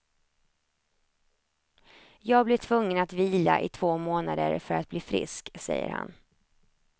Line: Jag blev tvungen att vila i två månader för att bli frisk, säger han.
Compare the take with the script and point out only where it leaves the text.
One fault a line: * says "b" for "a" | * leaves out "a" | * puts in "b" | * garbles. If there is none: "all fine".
all fine